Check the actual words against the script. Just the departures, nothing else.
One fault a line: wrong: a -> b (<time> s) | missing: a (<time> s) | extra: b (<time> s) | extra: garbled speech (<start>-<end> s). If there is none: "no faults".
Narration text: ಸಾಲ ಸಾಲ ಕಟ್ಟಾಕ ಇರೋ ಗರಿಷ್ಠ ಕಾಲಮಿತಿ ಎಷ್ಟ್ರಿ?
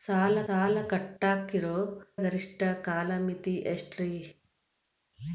no faults